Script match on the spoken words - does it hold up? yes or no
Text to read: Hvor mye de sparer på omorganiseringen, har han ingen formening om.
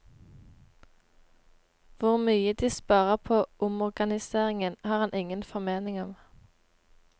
yes